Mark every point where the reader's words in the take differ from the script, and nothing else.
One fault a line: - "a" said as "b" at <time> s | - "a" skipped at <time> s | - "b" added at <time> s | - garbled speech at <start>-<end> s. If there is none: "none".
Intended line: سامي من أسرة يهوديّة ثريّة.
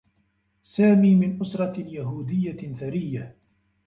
none